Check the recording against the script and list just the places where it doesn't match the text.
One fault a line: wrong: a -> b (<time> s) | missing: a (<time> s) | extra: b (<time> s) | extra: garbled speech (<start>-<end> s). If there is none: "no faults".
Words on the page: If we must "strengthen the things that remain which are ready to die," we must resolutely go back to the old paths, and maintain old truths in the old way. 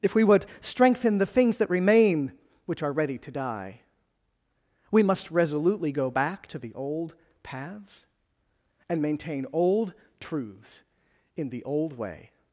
wrong: must -> would (0.2 s)